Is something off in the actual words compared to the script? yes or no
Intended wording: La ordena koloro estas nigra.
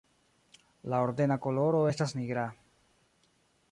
no